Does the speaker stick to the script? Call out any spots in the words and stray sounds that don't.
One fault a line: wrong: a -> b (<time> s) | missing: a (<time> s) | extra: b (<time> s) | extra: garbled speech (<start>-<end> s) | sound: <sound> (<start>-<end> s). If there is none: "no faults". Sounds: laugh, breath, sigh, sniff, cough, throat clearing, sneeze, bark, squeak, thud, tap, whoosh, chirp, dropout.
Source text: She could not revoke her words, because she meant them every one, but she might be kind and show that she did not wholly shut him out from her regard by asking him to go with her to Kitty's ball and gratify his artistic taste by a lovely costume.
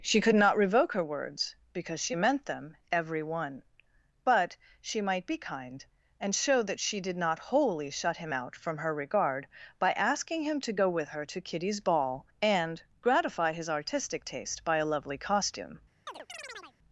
sound: chirp (16.1-16.8 s)